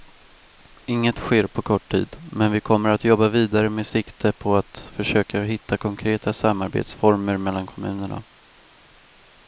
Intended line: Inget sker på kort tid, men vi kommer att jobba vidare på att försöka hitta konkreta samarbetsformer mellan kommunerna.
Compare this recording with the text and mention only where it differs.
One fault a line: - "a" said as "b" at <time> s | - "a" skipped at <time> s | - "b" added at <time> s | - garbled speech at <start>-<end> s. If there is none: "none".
- "med sikte" added at 3.7 s